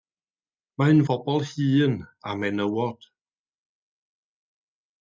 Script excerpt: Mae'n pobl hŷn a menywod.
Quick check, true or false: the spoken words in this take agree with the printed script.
true